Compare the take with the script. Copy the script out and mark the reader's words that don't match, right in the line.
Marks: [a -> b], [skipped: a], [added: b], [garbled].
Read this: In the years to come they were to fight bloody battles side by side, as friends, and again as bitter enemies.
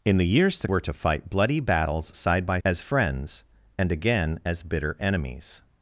In the years to [skipped: come they] were to fight bloody battles side by [skipped: side,] as friends, and again as bitter enemies.